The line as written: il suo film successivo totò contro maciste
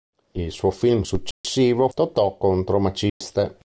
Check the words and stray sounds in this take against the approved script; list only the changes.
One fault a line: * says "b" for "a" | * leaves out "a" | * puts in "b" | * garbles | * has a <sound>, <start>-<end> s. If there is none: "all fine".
* has a dropout, 1.3-1.4 s
* has a dropout, 3.1-3.2 s